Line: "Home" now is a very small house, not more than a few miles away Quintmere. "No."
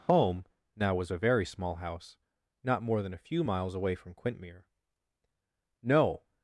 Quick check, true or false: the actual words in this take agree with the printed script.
false